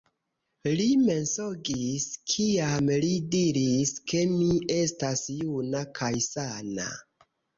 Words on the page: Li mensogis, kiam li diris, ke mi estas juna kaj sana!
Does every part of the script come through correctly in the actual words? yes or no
yes